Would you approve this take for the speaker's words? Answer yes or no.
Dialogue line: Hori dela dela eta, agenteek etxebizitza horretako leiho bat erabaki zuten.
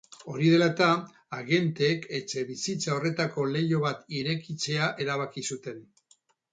no